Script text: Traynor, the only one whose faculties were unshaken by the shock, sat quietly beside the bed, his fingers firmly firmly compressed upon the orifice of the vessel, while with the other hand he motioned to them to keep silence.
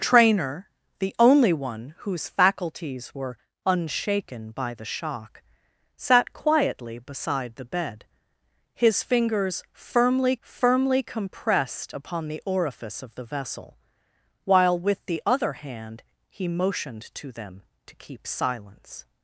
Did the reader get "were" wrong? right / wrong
right